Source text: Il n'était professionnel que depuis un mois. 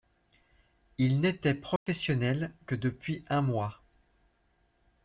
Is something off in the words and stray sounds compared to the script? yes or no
yes